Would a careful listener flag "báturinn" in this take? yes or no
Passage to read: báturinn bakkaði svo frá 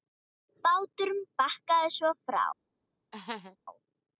no